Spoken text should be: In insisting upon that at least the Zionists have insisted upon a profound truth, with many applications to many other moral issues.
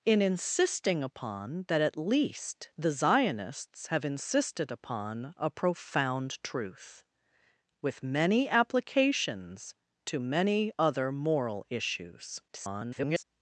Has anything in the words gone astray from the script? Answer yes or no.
yes